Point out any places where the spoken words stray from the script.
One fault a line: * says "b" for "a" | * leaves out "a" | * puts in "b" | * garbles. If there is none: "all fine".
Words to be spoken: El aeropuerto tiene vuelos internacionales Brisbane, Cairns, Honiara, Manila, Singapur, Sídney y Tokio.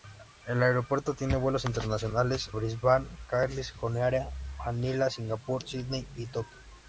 all fine